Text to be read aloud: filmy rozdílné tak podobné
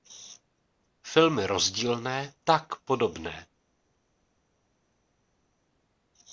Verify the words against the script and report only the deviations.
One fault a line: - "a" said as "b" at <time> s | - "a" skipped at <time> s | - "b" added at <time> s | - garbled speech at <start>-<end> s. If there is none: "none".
none